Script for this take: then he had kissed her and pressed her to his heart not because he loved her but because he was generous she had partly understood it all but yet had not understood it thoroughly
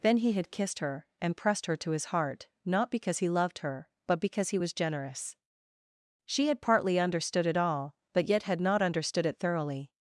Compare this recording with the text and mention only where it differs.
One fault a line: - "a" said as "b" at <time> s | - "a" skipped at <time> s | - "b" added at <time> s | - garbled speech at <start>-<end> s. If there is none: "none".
none